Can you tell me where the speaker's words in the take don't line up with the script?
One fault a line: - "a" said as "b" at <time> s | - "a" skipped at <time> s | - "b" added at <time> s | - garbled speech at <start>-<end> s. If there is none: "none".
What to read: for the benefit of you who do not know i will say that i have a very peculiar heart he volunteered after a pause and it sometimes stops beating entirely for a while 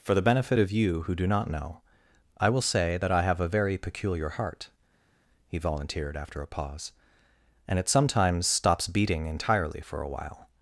none